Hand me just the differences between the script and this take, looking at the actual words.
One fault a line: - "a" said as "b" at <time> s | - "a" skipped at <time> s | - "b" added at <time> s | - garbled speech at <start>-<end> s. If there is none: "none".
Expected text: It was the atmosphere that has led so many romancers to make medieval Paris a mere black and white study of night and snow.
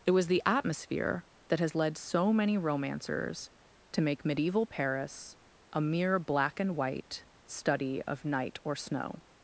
- "and" said as "or" at 8.6 s